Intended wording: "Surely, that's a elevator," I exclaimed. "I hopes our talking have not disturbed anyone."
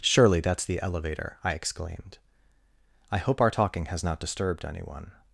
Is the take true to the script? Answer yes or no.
no